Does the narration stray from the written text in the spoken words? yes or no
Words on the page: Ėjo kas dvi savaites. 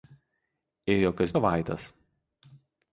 yes